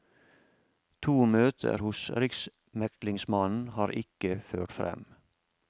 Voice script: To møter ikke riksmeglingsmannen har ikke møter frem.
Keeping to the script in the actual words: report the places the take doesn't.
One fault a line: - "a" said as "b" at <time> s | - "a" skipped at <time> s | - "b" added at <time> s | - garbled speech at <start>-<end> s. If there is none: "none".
- "ikke" said as "hos" at 1.8 s
- "møter" said as "ført" at 4.5 s